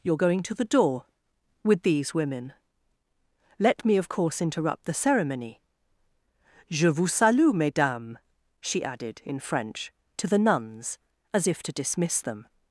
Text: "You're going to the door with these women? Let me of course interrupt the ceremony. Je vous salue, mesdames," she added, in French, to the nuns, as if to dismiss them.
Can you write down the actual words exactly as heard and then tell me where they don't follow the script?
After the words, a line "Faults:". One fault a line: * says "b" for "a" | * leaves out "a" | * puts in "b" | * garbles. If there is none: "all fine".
"You're going to the door with these women? Let me of course interrupt the ceremony. Je vous salue, mesdames," she added, in French, to the nuns, as if to dismiss them.
Faults:
all fine